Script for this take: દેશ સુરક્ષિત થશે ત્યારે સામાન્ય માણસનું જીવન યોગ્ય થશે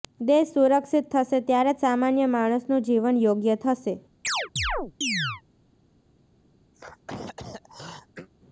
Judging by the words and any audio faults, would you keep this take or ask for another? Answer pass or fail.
fail